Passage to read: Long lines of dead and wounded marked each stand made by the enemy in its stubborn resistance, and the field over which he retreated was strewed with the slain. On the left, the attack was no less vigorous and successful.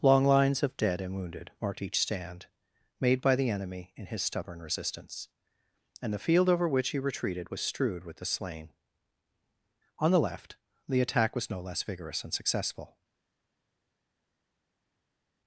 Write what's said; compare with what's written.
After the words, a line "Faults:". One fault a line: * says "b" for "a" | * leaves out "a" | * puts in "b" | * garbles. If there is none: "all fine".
Long lines of dead and wounded marked each stand made by the enemy in his stubborn resistance, and the field over which he retreated was strewed with the slain. On the left, the attack was no less vigorous and successful.
Faults:
* says "his" for "its"